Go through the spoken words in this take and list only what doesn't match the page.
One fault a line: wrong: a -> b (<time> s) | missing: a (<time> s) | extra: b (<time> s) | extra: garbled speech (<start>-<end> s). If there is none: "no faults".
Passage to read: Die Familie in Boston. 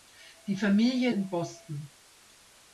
no faults